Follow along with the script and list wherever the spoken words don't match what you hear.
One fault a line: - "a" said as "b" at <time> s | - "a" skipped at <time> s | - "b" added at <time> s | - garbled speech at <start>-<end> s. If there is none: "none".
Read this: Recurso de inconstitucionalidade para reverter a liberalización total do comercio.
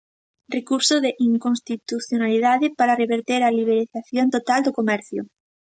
none